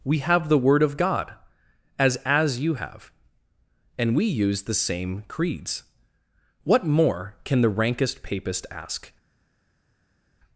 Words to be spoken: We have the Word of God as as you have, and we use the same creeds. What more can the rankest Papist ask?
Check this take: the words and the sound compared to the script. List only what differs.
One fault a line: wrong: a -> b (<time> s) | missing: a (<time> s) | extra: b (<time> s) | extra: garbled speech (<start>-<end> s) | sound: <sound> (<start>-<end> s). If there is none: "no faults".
no faults